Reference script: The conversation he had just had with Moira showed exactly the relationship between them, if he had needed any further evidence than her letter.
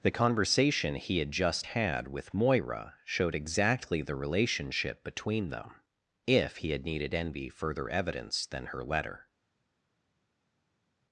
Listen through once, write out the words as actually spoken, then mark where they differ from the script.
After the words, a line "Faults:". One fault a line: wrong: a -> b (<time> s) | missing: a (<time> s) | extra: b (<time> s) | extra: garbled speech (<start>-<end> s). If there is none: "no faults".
The conversation he had just had with Moira showed exactly the relationship between them, if he had needed envy further evidence than her letter.
Faults:
wrong: any -> envy (7.1 s)